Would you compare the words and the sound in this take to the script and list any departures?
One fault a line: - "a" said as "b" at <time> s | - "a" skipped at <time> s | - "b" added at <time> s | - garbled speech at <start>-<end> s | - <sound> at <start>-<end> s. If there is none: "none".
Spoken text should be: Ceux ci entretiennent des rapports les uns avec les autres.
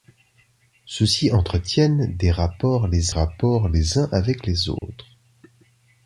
- "rapports les" added at 3.1 s
- dropout at 4.8-4.8 s